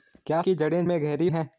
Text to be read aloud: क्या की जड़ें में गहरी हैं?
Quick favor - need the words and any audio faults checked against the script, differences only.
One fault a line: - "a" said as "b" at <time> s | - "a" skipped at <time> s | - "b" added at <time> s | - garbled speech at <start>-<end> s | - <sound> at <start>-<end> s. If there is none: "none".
none